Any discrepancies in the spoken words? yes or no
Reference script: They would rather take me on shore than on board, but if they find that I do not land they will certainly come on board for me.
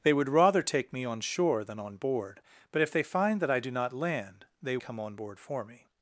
yes